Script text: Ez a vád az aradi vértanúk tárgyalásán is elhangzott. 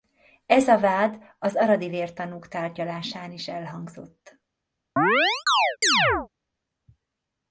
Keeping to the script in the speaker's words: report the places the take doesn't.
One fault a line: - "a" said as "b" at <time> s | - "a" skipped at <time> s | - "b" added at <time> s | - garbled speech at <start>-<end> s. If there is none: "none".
none